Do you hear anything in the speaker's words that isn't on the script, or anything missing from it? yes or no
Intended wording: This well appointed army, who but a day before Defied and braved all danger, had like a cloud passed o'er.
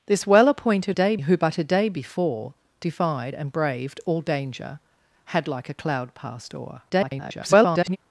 yes